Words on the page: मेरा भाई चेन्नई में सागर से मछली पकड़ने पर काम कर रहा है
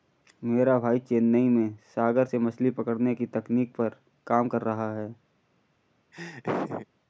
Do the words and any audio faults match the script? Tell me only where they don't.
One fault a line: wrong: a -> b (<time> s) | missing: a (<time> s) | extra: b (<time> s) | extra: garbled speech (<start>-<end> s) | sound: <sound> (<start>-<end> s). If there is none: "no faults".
extra: की तकनीक (3.1 s)
sound: laugh (6.1-6.9 s)